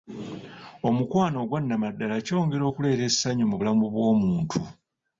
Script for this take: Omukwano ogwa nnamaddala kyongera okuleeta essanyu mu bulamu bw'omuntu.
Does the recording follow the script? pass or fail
pass